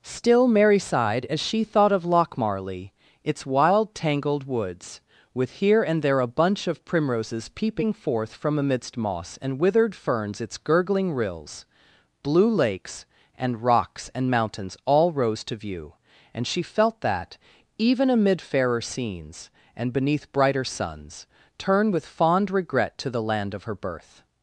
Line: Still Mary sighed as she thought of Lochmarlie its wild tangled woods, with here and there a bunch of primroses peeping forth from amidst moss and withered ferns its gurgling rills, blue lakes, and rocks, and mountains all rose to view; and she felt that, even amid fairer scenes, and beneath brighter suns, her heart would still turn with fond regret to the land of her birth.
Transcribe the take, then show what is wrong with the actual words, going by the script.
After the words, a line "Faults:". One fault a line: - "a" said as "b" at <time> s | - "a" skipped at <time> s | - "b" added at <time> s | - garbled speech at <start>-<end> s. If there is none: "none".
Still Mary sighed as she thought of Lochmarlie its wild tangled woods, with here and there a bunch of primroses peeping forth from amidst moss and withered ferns its gurgling rills, blue lakes, and rocks, and mountains all rose to view; and she felt that, even amid fairer scenes, and beneath brighter suns, turn with fond regret to the land of her birth.
Faults:
- "her heart would still" skipped at 21.3 s